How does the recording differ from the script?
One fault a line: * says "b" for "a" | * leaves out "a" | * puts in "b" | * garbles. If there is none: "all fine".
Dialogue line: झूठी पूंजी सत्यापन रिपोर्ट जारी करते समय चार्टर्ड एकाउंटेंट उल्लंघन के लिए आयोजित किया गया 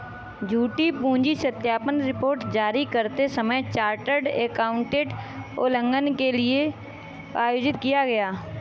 all fine